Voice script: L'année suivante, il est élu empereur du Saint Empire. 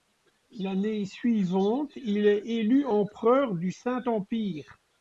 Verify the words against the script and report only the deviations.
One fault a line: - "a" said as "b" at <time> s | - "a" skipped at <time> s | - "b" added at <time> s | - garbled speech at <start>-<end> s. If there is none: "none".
none